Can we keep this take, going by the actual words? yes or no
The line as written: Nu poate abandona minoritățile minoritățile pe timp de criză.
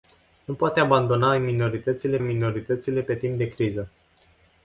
yes